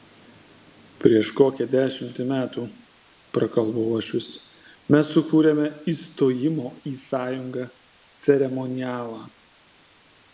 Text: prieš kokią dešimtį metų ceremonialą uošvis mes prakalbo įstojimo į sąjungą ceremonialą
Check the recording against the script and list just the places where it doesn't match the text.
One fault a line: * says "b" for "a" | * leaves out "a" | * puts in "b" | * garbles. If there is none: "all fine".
* says "prakalbo" for "ceremonialą"
* says "sukūrėme" for "prakalbo"